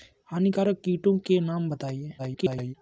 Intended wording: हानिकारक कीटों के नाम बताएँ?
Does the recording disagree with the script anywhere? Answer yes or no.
yes